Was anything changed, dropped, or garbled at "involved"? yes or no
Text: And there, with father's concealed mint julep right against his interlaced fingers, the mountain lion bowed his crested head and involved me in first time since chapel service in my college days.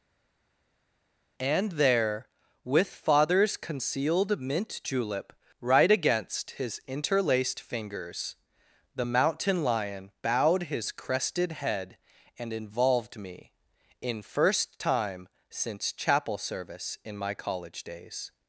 no